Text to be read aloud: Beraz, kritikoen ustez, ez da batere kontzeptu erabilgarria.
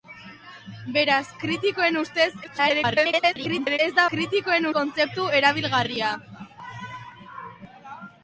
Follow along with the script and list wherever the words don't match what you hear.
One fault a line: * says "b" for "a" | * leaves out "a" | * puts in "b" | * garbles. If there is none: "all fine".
* garbles
* says "kritikoen" for "batere"